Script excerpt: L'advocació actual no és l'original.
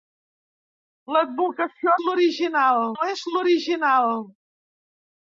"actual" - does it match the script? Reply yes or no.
no